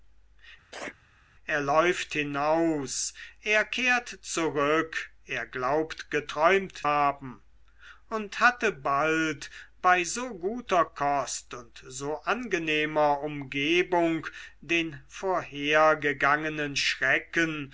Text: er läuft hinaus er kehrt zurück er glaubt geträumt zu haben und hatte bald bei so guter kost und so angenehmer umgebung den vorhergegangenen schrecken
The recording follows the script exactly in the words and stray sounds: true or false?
false